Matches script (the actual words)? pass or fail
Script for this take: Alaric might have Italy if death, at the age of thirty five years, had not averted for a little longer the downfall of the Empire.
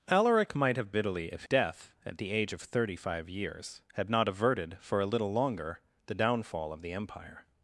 pass